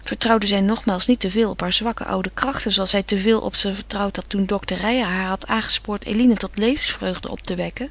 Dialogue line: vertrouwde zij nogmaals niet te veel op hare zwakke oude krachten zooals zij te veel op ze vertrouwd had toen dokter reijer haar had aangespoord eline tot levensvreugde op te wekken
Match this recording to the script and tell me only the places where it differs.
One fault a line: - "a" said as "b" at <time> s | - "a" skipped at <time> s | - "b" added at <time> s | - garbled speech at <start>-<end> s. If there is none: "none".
none